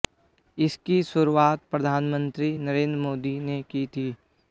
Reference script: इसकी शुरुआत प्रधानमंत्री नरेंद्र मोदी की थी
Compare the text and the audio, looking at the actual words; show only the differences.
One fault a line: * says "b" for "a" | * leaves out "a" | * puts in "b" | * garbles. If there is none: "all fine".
* puts in "ने"